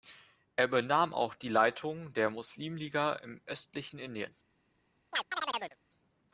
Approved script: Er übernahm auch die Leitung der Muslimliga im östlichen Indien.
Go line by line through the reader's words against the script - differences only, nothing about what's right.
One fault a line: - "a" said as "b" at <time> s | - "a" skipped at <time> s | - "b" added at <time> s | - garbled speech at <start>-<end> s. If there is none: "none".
none